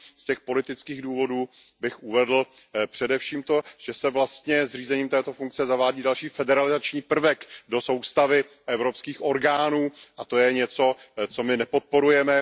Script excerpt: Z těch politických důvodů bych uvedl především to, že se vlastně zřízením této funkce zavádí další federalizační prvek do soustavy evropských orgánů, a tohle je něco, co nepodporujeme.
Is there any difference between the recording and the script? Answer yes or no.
yes